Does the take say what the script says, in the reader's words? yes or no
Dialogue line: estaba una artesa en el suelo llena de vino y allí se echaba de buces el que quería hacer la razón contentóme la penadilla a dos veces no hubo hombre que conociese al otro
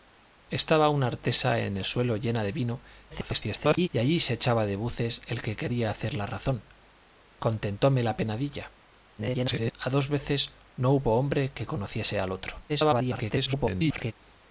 no